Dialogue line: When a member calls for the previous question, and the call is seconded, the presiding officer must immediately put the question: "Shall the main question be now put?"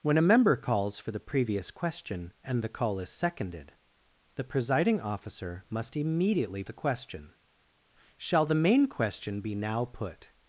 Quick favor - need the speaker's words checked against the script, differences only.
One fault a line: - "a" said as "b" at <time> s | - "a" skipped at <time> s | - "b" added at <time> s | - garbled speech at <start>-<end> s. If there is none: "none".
- "put" skipped at 6.6 s